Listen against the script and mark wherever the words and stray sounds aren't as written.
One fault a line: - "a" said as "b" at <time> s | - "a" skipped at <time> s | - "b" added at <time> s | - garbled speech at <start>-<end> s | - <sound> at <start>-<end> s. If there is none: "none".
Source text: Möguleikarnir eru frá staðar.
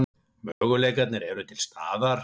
- dropout at 0.5-0.6 s
- "frá" said as "til" at 1.5 s